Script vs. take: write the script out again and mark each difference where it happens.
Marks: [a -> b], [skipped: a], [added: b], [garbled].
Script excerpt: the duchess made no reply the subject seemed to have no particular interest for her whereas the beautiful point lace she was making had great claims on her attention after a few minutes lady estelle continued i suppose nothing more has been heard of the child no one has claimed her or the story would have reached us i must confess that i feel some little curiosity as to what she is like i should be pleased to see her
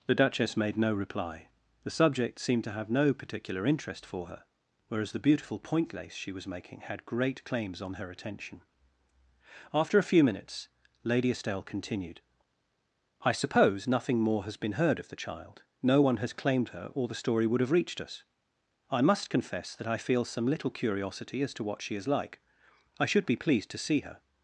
the duchess made no reply the subject seemed to have no particular interest for her whereas the beautiful point lace she was making had great claims on her attention after a few minutes lady estelle continued i suppose nothing more has been heard of the child no one has claimed her or the story would have reached us i must confess that i feel some little curiosity as to what she is like i should be pleased to see her